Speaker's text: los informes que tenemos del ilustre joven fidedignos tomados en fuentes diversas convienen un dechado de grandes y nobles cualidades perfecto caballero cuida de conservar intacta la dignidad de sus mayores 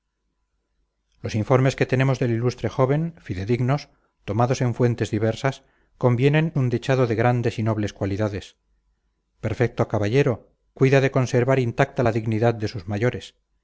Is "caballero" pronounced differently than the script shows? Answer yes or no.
no